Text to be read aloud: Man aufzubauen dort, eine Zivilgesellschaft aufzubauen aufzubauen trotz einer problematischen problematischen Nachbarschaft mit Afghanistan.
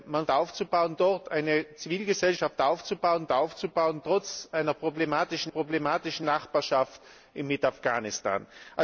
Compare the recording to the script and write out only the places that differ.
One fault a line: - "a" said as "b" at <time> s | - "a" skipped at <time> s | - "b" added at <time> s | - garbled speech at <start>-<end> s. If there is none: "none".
none